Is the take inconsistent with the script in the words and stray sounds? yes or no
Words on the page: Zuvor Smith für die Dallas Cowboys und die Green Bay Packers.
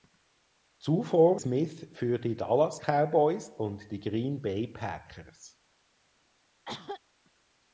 yes